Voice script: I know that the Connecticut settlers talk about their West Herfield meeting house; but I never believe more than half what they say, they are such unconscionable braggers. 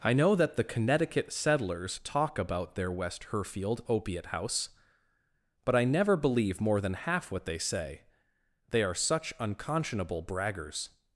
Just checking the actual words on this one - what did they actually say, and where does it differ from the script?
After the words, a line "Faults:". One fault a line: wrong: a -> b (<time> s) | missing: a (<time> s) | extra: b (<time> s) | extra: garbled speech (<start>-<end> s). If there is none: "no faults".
I know that the Connecticut settlers talk about their West Herfield opiate house; but I never believe more than half what they say, they are such unconscionable braggers.
Faults:
wrong: meeting -> opiate (3.9 s)